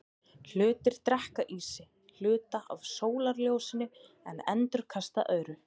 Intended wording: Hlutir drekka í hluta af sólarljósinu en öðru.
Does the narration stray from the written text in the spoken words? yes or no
yes